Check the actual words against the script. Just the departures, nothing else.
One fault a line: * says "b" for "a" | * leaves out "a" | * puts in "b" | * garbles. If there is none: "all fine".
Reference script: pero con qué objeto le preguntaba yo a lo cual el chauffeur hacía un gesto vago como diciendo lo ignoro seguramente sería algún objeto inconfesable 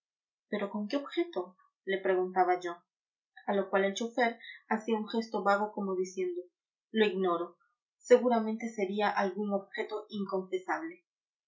all fine